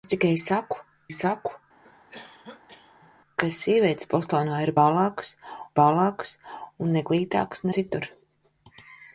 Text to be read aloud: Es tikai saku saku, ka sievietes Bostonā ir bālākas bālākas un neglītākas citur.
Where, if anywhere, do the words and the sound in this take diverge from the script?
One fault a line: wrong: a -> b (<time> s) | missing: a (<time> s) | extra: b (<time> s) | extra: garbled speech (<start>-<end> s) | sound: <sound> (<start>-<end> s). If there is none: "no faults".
sound: cough (1.8-3.1 s)